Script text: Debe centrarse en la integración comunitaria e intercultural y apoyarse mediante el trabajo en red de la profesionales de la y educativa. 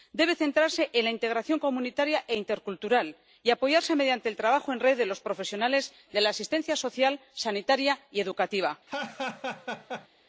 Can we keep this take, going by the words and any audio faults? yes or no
no